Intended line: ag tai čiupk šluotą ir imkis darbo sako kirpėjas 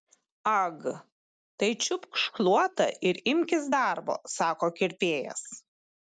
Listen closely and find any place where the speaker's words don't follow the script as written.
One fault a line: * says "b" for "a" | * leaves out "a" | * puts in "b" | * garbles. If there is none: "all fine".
all fine